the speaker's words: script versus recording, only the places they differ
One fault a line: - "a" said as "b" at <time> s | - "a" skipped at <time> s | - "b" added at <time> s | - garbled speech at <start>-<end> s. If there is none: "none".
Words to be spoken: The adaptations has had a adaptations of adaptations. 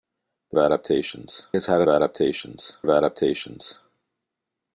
none